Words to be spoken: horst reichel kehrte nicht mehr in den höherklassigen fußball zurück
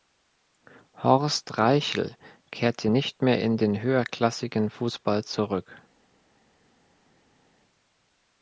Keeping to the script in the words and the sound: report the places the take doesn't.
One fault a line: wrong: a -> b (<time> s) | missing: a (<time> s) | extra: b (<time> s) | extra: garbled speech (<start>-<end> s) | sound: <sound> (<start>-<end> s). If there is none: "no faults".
no faults